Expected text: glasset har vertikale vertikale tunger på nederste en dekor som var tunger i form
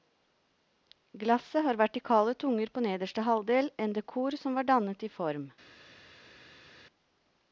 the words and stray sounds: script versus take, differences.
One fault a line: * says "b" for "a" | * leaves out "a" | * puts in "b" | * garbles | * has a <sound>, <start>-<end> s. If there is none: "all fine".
* leaves out "vertikale"
* puts in "halvdel"
* says "dannet" for "tunger"